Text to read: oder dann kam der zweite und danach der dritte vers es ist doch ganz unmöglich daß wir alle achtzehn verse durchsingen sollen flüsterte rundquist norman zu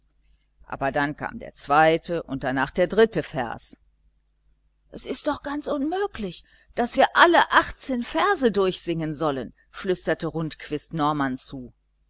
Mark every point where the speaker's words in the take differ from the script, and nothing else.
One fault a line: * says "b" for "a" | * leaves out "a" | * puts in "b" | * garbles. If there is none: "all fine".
* says "aber" for "oder"